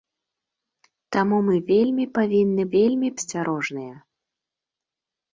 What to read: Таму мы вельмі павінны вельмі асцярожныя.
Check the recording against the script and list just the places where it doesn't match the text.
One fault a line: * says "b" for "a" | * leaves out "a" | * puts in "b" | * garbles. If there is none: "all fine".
all fine